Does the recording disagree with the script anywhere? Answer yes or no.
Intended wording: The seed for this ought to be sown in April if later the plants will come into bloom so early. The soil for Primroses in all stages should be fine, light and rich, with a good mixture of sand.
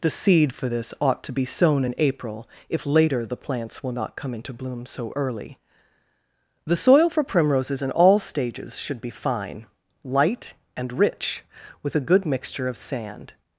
yes